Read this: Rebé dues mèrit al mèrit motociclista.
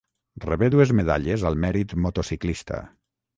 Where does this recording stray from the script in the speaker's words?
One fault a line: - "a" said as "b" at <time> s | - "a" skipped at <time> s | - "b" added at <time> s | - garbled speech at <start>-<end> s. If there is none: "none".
- "mèrit" said as "medalles" at 1.0 s